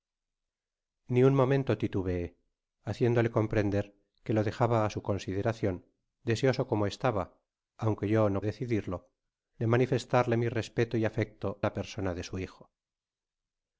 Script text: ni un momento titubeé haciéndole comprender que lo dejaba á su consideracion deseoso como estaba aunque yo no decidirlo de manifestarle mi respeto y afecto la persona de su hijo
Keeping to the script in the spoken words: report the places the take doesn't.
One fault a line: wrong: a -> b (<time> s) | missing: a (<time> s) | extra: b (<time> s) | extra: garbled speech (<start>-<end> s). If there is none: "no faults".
no faults